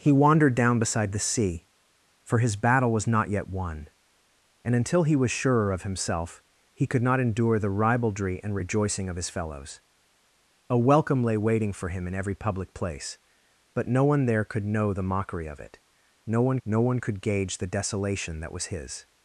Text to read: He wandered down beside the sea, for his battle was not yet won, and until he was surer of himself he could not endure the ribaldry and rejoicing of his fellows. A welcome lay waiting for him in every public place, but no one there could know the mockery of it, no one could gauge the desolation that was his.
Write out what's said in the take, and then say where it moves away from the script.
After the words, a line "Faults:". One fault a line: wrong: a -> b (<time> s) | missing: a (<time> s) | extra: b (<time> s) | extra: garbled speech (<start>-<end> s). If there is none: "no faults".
He wandered down beside the sea, for his battle was not yet won, and until he was surer of himself he could not endure the ribaldry and rejoicing of his fellows. A welcome lay waiting for him in every public place, but no one there could know the mockery of it, no one no one could gauge the desolation that was his.
Faults:
extra: no one (16.6 s)